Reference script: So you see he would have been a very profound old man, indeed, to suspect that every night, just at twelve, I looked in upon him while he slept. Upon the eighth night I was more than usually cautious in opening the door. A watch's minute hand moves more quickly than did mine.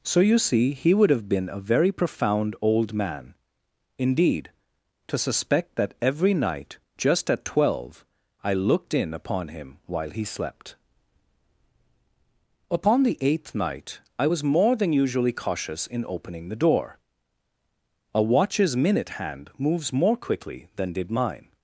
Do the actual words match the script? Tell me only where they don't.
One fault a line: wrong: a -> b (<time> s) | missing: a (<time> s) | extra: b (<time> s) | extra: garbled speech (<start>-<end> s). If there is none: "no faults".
no faults